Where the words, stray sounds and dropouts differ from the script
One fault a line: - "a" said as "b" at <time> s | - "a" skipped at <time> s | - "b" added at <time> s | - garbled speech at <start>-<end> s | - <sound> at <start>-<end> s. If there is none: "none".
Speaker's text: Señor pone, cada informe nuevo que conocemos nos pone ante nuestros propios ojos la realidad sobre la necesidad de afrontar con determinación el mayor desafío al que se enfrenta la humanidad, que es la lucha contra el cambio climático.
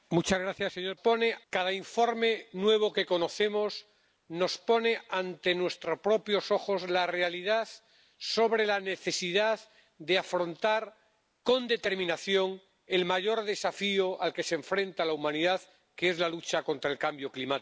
none